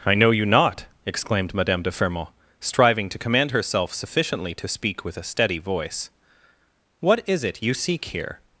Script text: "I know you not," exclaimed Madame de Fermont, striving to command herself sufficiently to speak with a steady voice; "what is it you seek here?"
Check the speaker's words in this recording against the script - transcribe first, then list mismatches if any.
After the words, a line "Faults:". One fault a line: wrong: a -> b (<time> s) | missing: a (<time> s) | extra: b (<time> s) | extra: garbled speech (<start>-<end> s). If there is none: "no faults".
"I know you not," exclaimed Madame de Fermont, striving to command herself sufficiently to speak with a steady voice; "what is it you seek here?"
Faults:
no faults